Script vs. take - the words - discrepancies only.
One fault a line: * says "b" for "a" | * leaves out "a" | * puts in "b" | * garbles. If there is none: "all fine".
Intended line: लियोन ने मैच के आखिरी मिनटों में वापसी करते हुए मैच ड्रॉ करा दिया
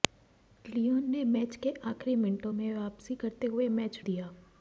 * leaves out "ड्रॉ करा"